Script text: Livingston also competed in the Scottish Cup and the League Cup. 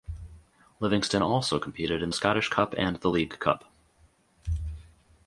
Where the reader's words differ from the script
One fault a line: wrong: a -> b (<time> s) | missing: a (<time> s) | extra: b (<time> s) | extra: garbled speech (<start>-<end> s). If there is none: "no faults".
missing: the (2.1 s)